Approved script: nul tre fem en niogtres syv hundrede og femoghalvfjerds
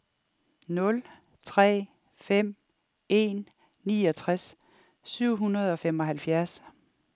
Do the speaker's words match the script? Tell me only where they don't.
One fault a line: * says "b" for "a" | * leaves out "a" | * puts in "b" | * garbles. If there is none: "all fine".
all fine